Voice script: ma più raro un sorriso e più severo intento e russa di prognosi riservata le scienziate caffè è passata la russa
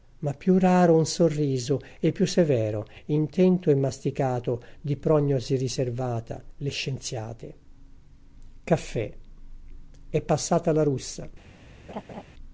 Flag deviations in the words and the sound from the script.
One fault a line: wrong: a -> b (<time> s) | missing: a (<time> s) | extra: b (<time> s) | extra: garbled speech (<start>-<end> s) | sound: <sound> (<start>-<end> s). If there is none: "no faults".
wrong: russa -> masticato (3.8 s)
sound: laugh (11.9-12.2 s)